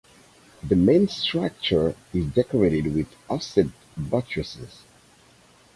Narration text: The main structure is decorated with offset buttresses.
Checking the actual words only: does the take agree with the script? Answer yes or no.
yes